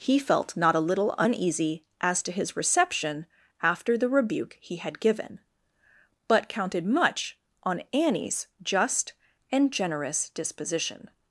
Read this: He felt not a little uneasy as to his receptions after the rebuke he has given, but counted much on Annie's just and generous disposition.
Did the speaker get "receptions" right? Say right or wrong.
wrong